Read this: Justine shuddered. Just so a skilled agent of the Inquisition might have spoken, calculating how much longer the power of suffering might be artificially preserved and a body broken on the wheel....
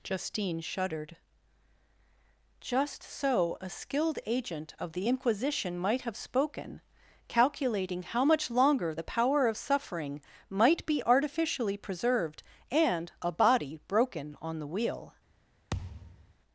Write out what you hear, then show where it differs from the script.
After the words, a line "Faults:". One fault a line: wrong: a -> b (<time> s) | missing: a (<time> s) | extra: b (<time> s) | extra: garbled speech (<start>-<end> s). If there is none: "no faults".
Justine shuddered. Just so a skilled agent of the Inquisition might have spoken, calculating how much longer the power of suffering might be artificially preserved and a body broken on the wheel....
Faults:
no faults